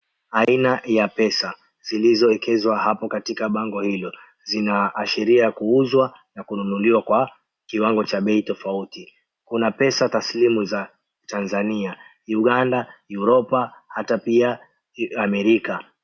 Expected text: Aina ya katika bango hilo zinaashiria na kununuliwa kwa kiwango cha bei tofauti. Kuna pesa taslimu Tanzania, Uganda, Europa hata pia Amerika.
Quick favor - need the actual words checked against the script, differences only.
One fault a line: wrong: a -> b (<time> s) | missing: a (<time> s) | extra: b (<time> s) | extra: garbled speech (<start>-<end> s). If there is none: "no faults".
extra: pesa zilizoekezwa hapo (1.1 s)
extra: kuuzwa (5.5 s)
extra: za (10.6 s)